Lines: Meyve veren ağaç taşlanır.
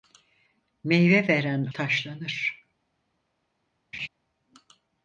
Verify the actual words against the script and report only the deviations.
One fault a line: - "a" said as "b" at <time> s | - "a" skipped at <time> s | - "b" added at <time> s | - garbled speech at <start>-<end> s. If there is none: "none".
- "ağaç" skipped at 1.6 s